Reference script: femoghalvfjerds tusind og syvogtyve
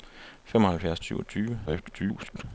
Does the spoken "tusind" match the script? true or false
false